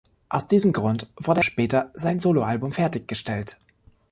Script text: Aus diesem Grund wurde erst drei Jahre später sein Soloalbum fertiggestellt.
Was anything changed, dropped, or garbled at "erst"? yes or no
yes